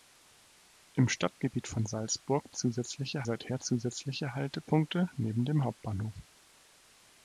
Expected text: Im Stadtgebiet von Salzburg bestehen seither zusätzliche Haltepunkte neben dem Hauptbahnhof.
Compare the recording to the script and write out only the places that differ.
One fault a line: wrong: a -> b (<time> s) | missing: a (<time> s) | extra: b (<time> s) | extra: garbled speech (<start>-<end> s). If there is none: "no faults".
wrong: bestehen -> zusätzliche (2.5 s)